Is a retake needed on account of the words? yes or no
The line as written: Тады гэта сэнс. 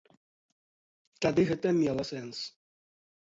yes